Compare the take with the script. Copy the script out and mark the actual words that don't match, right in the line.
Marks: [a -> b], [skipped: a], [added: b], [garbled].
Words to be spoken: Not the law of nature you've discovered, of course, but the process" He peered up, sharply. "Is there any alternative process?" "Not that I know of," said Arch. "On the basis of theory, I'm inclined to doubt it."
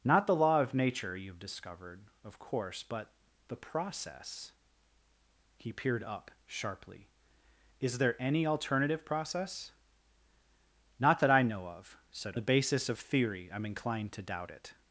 Not the law of nature you've discovered, of course, but the process" He peered up, sharply. "Is there any alternative process?" "Not that I know of," said [skipped: Arch. "On] the basis of theory, I'm inclined to doubt it."